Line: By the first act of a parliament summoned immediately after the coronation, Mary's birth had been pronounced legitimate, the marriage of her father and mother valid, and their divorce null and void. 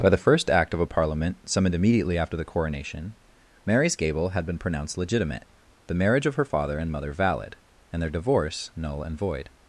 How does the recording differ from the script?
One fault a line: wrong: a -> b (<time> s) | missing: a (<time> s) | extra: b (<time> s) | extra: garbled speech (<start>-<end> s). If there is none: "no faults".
wrong: birth -> gable (4.0 s)